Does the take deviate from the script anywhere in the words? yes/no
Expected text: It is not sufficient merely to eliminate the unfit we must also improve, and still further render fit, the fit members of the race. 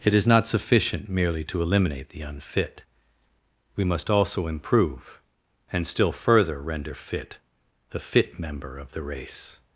yes